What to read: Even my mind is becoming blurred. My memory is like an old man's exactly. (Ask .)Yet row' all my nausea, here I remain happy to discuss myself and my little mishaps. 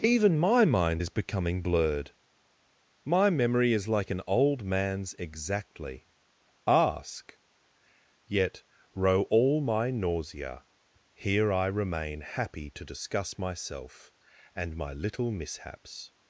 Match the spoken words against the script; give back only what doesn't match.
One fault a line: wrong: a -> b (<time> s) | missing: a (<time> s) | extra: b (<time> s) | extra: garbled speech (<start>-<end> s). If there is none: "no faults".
no faults